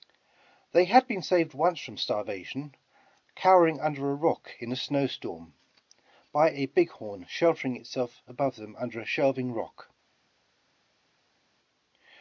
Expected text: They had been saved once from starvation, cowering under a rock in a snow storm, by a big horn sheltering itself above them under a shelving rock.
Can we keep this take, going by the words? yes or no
yes